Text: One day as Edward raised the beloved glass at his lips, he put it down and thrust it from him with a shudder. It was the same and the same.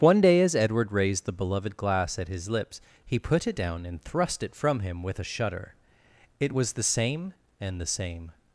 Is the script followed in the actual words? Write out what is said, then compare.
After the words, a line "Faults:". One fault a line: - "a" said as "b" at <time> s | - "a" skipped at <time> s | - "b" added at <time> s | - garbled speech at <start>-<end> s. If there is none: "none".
One day as Edward raised the beloved glass at his lips, he put it down and thrust it from him with a shudder. It was the same and the same.
Faults:
none